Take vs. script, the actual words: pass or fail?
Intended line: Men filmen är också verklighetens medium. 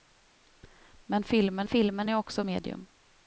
fail